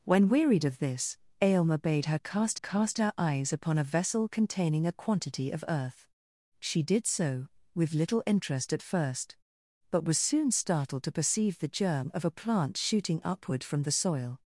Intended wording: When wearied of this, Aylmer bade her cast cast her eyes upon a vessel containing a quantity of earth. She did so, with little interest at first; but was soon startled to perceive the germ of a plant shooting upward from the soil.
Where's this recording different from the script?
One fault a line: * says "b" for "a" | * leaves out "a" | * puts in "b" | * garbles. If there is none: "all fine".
all fine